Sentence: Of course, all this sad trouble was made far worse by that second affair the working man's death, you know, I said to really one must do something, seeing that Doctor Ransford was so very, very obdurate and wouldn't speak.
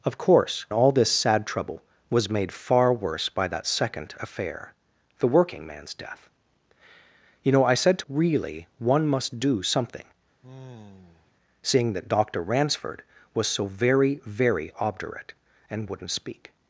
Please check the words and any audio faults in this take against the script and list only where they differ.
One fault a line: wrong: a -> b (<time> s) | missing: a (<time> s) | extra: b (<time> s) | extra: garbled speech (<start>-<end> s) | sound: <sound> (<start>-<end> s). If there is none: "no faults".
sound: sigh (10.4-11.3 s)